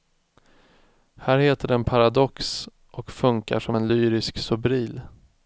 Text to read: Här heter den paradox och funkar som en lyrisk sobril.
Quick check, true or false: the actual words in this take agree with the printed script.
true